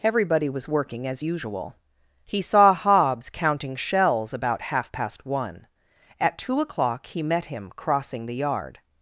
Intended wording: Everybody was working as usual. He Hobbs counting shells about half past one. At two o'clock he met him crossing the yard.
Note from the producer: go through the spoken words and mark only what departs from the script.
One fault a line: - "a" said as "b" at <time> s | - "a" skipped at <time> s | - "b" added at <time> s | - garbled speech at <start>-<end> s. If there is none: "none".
- "saw" added at 2.4 s